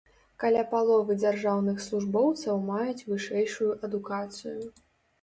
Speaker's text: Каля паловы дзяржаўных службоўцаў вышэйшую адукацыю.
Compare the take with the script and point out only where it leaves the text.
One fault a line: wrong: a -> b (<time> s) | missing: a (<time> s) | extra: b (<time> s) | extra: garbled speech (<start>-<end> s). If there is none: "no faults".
extra: маюць (2.7 s)